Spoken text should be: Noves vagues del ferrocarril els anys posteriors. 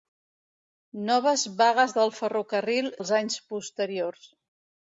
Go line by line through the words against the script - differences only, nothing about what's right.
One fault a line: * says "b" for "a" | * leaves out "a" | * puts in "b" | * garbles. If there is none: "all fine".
all fine